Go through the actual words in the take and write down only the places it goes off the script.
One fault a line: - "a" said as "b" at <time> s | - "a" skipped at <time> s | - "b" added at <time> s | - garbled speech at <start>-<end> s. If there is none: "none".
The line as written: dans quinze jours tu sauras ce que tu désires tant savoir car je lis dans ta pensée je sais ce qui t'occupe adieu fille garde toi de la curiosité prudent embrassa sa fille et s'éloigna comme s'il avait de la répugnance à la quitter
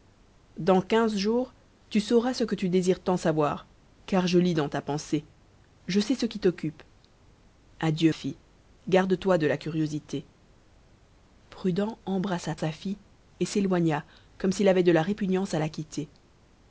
none